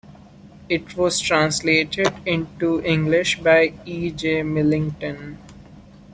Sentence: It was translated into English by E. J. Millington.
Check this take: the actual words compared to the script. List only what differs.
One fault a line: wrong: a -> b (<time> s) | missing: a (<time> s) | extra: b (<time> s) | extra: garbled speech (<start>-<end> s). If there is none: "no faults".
no faults